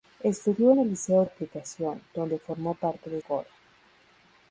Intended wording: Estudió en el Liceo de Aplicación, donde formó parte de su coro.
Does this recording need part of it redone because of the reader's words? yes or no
yes